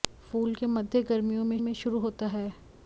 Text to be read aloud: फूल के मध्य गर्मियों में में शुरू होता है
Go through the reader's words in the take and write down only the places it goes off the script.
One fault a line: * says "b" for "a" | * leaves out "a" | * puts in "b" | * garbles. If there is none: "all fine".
all fine